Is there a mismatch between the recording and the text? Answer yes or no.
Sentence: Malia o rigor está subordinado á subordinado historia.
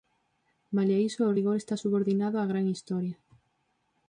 yes